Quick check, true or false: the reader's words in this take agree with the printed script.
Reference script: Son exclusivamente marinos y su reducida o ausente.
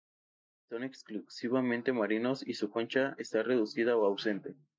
false